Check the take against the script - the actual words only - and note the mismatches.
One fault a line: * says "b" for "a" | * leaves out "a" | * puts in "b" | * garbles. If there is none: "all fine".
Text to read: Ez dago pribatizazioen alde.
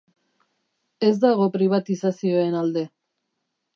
all fine